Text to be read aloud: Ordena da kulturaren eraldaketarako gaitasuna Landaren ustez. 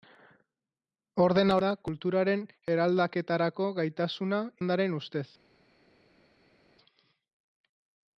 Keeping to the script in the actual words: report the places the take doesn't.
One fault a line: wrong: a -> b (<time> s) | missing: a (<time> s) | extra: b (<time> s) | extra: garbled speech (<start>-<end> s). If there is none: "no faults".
no faults